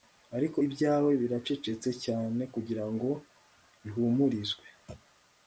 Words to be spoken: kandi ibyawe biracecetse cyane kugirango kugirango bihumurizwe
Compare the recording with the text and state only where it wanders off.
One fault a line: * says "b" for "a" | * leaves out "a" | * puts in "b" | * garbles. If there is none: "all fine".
* says "ariko" for "kandi"
* leaves out "kugirango"